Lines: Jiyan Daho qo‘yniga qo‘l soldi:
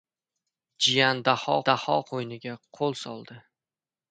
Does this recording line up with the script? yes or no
no